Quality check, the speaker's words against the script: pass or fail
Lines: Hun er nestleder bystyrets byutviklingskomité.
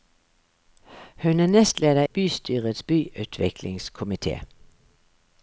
pass